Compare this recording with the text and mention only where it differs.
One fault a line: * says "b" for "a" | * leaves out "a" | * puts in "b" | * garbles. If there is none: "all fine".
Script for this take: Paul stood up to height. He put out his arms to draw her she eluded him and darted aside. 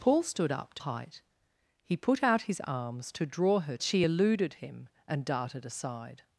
all fine